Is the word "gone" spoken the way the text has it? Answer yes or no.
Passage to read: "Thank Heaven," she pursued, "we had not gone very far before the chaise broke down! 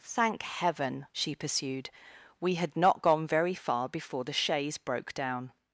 yes